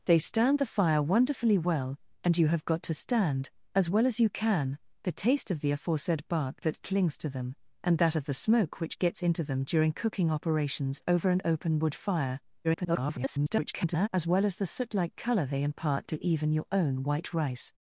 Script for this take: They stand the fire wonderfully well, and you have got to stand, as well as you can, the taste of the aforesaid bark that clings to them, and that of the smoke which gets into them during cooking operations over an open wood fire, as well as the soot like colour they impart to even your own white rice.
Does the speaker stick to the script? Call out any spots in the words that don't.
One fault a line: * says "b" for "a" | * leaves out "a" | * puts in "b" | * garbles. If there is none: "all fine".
* garbles